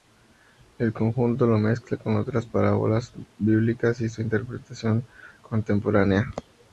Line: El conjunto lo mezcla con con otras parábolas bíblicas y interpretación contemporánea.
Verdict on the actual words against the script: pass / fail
fail